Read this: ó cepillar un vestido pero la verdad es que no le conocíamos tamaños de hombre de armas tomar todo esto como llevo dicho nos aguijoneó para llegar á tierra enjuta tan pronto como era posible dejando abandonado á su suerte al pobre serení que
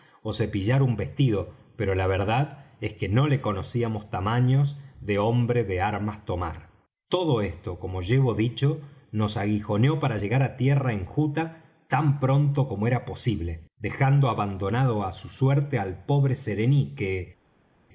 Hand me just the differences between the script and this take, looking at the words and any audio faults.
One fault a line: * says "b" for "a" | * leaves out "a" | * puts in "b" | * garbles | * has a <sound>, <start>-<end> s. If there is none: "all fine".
all fine